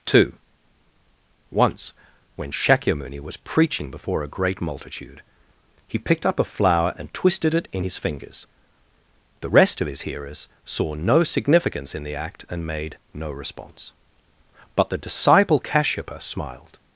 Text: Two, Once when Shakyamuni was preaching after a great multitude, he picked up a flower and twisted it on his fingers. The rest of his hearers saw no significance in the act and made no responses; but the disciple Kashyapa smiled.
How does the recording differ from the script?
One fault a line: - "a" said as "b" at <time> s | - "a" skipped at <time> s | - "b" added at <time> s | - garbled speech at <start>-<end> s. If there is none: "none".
- "after" said as "before" at 3.9 s
- "on" said as "in" at 7.7 s
- "responses" said as "response" at 13.3 s